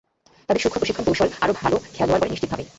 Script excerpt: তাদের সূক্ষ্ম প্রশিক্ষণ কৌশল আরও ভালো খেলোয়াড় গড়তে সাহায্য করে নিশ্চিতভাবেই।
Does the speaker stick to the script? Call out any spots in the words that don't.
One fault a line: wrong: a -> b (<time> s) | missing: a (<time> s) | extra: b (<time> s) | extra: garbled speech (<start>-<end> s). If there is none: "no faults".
missing: গড়তে সাহায্য (2.2 s)